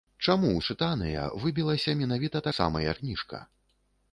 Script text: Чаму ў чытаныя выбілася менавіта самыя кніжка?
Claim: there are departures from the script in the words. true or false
false